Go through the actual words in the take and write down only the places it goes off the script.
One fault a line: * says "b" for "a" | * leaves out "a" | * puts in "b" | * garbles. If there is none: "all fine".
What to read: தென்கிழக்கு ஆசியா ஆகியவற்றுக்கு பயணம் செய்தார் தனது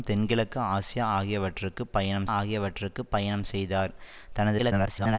* puts in "ஆகியவற்றுக்கு பயணம்"
* garbles